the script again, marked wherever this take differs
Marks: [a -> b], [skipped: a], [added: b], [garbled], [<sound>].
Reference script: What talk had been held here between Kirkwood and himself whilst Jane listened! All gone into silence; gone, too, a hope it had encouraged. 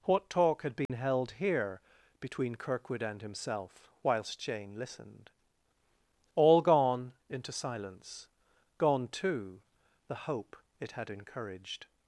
What talk had been [dropout] held here between Kirkwood and himself whilst Jane listened! All gone into silence; gone, too, [a -> the] hope it had encouraged.